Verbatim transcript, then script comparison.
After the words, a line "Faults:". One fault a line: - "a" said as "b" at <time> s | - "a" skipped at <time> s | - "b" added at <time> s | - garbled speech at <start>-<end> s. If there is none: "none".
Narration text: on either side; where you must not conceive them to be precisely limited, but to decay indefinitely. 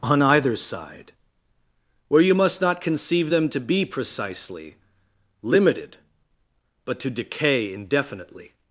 on either side; where you must not conceive them to be precisely limited, but to decay indefinitely.
Faults:
none